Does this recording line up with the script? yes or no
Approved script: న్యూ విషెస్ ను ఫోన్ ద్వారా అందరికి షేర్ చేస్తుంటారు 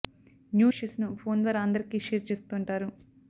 yes